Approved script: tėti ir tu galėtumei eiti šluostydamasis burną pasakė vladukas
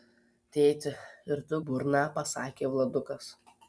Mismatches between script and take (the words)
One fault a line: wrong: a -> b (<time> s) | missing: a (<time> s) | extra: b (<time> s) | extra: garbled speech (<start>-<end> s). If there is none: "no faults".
missing: galėtumei eiti šluostydamasis (1.6 s)